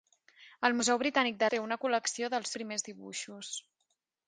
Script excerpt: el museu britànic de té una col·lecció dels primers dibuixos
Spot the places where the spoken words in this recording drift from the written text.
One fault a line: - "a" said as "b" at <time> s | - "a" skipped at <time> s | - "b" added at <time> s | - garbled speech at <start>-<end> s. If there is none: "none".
none